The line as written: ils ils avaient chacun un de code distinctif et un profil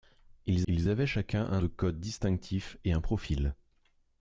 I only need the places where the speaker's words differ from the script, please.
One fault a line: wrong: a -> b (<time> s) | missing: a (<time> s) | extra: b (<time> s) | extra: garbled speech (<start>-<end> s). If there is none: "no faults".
no faults